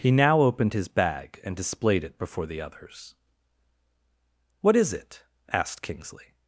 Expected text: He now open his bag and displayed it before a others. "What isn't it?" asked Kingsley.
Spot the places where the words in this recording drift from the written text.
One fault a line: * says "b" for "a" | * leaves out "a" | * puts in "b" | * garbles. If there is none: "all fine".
* says "opened" for "open"
* says "the" for "a"
* says "is" for "isn't"